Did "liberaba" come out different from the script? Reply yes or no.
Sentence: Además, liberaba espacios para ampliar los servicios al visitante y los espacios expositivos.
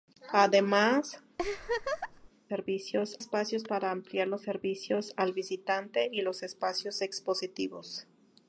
yes